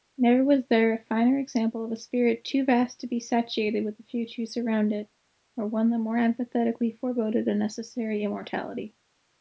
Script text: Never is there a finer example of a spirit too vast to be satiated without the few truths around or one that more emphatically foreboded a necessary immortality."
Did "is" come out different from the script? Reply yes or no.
yes